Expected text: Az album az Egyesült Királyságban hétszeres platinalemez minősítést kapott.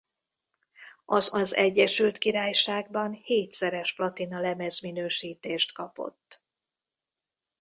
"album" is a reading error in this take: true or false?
true